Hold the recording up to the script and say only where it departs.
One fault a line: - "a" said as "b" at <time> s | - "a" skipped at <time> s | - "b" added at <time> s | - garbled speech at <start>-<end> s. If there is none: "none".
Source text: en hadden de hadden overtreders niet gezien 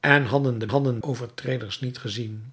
none